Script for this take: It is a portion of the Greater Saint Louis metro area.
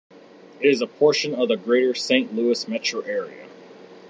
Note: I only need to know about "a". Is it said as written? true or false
true